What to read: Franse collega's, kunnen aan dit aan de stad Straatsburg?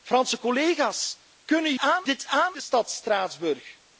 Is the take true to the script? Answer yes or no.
yes